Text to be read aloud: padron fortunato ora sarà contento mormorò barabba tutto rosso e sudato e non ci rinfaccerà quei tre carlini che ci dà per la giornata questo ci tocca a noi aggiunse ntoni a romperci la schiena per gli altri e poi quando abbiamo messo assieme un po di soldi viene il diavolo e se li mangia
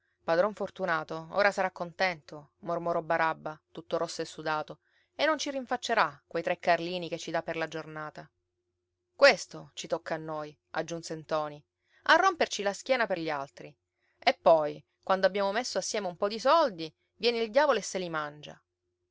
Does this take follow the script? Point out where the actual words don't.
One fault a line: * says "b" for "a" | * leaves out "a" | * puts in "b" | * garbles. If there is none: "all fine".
all fine